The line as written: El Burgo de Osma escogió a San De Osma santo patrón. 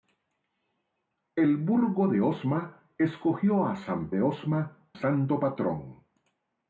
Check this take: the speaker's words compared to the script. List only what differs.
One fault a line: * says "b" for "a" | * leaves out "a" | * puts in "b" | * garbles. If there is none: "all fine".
all fine